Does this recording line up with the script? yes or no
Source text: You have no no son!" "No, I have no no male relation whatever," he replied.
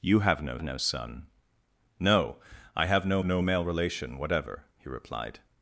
yes